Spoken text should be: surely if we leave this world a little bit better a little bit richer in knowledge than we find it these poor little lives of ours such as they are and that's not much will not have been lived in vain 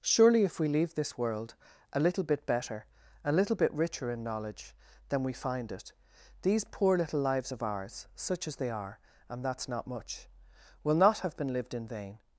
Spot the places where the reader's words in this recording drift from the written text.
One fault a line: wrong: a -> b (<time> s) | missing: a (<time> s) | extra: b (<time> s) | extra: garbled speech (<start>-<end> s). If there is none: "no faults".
no faults